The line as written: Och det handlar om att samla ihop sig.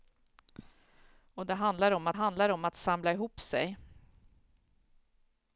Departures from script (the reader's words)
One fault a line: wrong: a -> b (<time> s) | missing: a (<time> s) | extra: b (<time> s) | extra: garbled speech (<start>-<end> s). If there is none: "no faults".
extra: handlar om att (2.1 s)